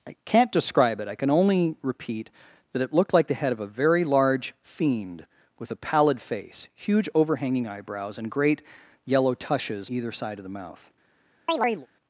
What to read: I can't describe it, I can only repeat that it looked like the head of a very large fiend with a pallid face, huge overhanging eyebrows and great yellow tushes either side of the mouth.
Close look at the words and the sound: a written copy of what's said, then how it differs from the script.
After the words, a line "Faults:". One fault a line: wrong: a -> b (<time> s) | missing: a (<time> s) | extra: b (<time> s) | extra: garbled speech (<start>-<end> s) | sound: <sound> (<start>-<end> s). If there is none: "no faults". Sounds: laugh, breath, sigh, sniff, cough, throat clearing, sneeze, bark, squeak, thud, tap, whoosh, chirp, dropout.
I can't describe it, I can only repeat that it looked like the head of a very large fiend with a pallid face, huge overhanging eyebrows and great yellow tushes either side of the mouth.
Faults:
sound: chirp (11.5-11.9 s)